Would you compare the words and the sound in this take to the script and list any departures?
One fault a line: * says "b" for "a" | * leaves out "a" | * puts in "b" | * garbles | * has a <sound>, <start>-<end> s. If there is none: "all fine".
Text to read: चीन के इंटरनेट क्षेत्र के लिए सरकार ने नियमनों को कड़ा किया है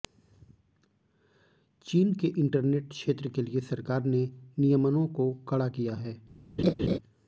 * has a laugh, 6.6-7.0 s